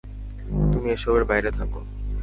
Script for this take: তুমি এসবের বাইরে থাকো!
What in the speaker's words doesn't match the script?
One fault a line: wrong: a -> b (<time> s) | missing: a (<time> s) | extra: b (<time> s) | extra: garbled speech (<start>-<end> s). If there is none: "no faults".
no faults